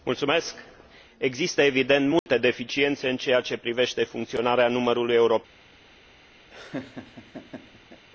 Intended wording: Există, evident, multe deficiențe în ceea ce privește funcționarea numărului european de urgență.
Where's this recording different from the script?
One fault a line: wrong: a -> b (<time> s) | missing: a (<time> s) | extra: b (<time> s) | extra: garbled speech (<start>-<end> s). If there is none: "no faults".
no faults